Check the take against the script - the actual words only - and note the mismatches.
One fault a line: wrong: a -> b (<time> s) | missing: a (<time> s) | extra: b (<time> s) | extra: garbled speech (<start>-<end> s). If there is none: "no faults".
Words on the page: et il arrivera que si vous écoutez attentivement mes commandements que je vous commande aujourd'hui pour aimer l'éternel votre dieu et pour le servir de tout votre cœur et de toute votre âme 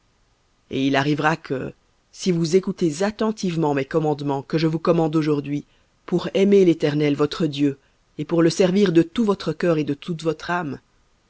no faults